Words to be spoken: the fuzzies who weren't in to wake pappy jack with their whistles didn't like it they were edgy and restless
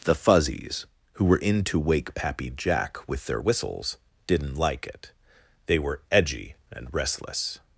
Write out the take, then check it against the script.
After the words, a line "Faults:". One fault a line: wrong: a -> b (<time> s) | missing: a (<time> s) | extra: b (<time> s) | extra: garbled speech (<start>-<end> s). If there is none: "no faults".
the fuzzies who were in to wake pappy jack with their whistles didn't like it they were edgy and restless
Faults:
wrong: weren't -> were (1.2 s)